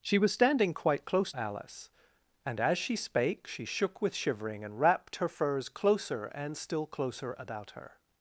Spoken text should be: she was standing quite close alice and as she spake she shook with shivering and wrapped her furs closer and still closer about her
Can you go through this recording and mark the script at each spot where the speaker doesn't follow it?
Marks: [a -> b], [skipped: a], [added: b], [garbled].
she was standing quite close alice and as she spake she shook with shivering and wrapped her furs closer and still closer about her